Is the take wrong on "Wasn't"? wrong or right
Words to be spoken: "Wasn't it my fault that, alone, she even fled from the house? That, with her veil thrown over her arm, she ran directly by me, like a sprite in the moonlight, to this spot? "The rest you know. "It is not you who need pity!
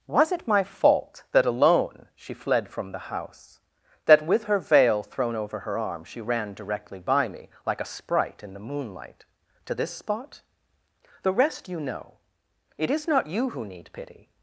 wrong